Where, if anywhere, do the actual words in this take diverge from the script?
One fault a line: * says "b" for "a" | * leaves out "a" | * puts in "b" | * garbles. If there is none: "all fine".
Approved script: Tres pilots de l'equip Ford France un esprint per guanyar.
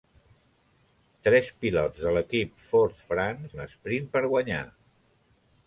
all fine